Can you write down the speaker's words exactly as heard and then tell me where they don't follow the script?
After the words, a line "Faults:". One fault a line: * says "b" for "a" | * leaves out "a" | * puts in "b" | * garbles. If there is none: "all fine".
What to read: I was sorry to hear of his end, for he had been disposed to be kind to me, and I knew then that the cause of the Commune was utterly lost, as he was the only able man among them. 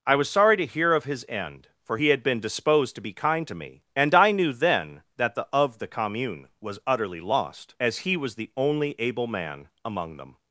I was sorry to hear of his end, for he had been disposed to be kind to me, and I knew then that the of the Commune was utterly lost, as he was the only able man among them.
Faults:
* leaves out "cause"